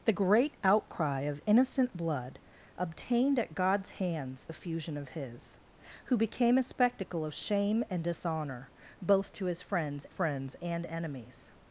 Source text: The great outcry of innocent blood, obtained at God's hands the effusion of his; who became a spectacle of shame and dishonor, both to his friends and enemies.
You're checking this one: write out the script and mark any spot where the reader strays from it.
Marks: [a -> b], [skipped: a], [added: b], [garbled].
The great outcry of innocent blood, obtained at God's hands [skipped: the] effusion of his; who became a spectacle of shame and dishonor, both to his friends [added: friends] and enemies.